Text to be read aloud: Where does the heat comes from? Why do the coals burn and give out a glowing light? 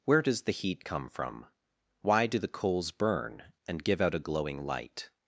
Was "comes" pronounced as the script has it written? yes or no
no